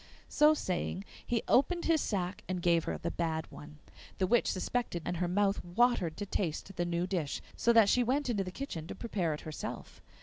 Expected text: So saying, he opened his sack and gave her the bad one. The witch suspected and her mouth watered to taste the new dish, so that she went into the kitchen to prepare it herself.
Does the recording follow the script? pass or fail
pass